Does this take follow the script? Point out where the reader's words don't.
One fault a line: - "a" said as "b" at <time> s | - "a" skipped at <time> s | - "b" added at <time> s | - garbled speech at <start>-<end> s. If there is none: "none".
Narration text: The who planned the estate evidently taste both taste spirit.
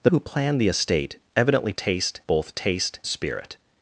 none